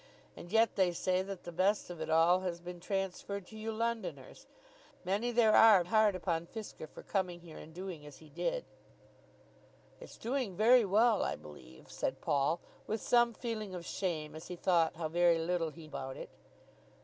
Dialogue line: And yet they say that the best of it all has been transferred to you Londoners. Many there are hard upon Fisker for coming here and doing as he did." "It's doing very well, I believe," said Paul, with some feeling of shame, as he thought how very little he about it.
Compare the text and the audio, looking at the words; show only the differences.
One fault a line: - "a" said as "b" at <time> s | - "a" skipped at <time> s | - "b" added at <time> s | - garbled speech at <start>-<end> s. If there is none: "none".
none